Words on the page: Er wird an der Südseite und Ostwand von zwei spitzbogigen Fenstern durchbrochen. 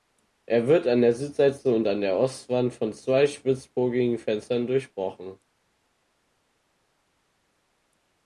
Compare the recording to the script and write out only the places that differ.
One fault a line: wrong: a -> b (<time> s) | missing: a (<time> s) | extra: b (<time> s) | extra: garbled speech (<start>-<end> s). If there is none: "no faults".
extra: an der (1.9 s)